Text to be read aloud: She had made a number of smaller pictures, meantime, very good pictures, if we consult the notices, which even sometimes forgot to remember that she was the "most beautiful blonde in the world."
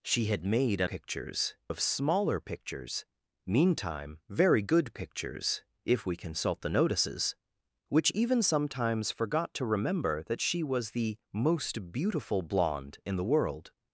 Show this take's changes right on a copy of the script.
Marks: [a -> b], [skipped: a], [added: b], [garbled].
She had made a [number -> pictures] of smaller pictures, meantime, very good pictures, if we consult the notices, which even sometimes forgot to remember that she was the "most beautiful blonde in the world."